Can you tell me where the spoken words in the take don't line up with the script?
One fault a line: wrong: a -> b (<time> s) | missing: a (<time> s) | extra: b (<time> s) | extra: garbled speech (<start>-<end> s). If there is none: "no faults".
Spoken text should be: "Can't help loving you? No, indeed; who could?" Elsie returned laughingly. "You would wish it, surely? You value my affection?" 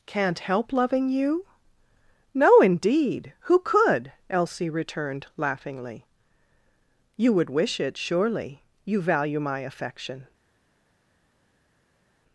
no faults